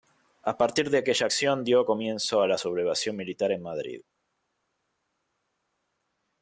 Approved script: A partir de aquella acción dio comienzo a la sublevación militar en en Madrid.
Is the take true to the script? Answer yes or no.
no